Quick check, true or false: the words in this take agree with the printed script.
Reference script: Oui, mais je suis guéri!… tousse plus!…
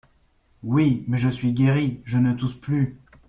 false